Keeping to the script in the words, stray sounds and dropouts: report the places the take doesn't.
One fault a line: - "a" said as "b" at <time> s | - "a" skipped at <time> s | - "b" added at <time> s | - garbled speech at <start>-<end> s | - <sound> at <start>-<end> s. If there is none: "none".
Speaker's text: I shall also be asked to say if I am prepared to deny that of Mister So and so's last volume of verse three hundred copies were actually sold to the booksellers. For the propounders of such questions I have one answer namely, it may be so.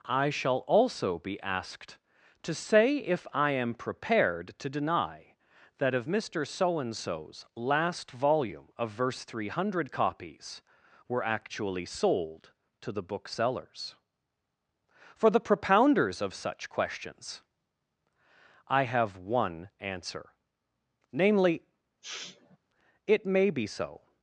- sniff at 22.0-22.6 s